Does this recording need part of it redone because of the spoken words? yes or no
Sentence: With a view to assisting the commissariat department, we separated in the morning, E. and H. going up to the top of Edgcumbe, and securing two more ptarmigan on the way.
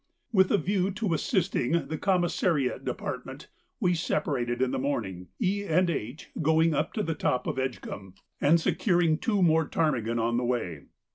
no